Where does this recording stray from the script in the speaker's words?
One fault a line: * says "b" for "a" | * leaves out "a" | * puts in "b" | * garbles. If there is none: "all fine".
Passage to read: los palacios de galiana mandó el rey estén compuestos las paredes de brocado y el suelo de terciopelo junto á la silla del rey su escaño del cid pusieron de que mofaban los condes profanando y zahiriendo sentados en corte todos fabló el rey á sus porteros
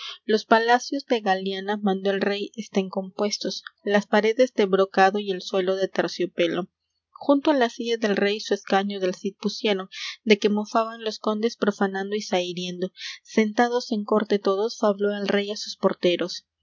all fine